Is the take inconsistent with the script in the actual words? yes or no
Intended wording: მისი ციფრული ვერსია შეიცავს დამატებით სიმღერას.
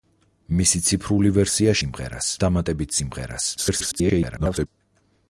yes